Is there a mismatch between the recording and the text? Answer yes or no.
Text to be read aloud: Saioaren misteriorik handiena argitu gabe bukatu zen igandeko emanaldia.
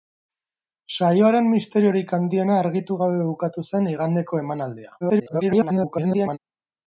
yes